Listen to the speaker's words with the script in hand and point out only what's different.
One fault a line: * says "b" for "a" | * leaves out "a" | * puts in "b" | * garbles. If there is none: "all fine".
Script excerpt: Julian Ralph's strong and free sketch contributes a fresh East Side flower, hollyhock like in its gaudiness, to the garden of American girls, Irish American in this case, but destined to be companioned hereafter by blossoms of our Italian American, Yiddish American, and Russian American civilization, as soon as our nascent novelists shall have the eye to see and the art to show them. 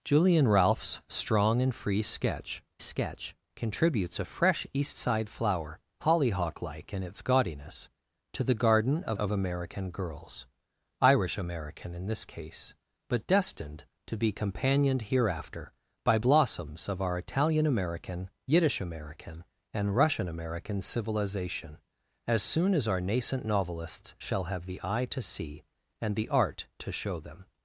* puts in "sketch"
* puts in "of"